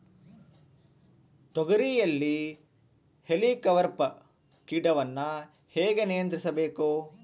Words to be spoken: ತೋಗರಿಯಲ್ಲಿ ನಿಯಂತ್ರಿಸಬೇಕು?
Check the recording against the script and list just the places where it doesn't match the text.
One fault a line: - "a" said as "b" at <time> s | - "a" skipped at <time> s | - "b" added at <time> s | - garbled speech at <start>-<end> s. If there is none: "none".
- "ಹೇಲಿಕವರ್ಪ ಕೇಟವನ್ನು ಹೇಗೆ" added at 3.2 s